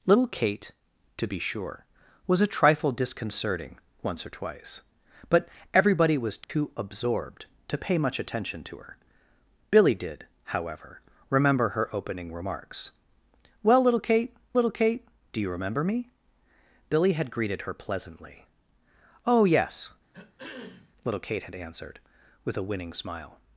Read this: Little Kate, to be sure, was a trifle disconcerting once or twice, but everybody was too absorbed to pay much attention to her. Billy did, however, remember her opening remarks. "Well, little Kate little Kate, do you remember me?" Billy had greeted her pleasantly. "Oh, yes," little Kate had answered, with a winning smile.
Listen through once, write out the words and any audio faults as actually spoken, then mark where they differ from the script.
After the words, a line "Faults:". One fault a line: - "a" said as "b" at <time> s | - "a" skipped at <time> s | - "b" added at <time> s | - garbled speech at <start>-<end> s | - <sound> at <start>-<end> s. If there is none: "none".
Little Kate, to be sure, was a trifle disconcerting once or twice, but everybody was too absorbed to pay much attention to her. Billy did, however, remember her opening remarks. "Well, little Kate little Kate, do you remember me?" Billy had greeted her pleasantly. "Oh, yes," little Kate had answered, with a winning smile.
Faults:
- dropout at 6.4-6.5 s
- throat clearing at 20.1-20.9 s